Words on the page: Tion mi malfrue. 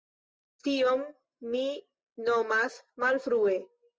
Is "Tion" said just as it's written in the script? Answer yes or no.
yes